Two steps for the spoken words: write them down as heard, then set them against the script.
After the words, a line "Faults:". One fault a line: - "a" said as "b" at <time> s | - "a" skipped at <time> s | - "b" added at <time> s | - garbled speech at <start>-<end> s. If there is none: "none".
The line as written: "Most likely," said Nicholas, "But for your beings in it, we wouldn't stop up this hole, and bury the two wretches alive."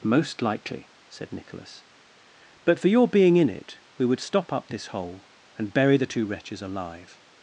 "Most likely," said Nicholas, "But for your being in it, we would stop up this hole, and bury the two wretches alive."
Faults:
- "beings" said as "being" at 3.1 s
- "wouldn't" said as "would" at 4.0 s